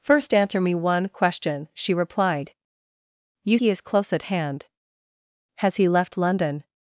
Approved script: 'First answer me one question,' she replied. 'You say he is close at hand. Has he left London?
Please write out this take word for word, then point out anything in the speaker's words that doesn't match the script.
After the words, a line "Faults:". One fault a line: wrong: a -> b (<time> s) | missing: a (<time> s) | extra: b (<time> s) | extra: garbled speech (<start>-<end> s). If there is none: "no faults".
'First answer me one question,' she replied. 'You he is close at hand. Has he left London?
Faults:
missing: say (3.6 s)